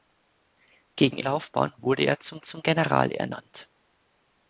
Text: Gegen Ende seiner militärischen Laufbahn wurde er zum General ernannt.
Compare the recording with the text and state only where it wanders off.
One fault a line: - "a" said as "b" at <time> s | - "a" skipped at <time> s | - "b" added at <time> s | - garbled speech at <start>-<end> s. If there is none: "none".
- "Ende seiner militärischen" skipped at 1.2 s
- "zum" added at 2.4 s